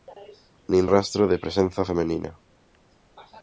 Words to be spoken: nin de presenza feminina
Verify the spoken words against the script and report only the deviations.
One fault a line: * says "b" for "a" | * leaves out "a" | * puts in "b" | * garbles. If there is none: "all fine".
* puts in "rastro"